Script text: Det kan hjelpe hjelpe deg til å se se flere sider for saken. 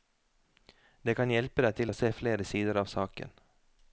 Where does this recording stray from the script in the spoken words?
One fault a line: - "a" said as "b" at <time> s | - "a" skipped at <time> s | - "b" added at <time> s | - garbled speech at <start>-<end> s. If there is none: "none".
- "hjelpe" skipped at 1.6 s
- "se" skipped at 2.1 s
- "for" said as "av" at 2.8 s